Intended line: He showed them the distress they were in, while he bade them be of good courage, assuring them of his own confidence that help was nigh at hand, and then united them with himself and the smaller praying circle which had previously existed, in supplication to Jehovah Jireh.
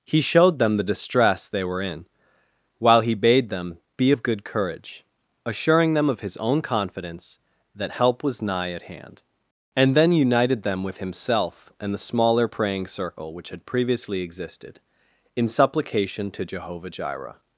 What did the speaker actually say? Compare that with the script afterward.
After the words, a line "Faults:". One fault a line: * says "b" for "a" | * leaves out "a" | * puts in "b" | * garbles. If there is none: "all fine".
He showed them the distress they were in, while he bade them be of good courage, assuring them of his own confidence that help was nigh at hand, and then united them with himself and the smaller praying circle which had previously existed, in supplication to Jehovah Jireh.
Faults:
all fine